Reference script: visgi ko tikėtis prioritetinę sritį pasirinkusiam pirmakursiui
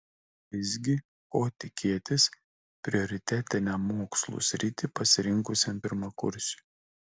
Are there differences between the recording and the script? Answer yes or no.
yes